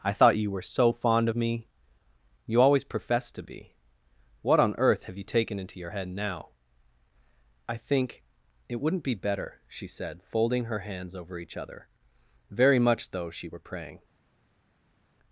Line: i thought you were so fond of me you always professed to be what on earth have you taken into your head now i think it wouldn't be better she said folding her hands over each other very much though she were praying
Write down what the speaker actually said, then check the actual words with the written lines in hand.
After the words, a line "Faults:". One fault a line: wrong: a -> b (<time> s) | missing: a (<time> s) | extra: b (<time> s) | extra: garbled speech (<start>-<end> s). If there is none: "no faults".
i thought you were so fond of me you always professed to be what on earth have you taken into your head now i think it wouldn't be better she said folding her hands over each other very much though she were praying
Faults:
no faults